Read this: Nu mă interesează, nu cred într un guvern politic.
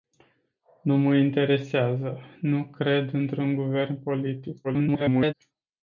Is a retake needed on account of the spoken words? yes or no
yes